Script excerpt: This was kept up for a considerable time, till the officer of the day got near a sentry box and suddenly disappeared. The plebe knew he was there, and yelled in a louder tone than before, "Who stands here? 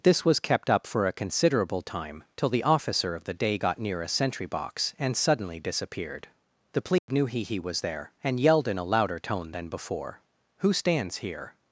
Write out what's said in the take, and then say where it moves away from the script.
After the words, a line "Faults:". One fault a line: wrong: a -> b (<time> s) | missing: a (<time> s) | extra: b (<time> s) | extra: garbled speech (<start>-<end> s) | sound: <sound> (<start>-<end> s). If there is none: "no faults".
This was kept up for a considerable time, till the officer of the day got near a sentry box and suddenly disappeared. The plebe knew he he was there, and yelled in a louder tone than before, "Who stands here?
Faults:
sound: dropout (7.0-7.1 s)
extra: he (7.4 s)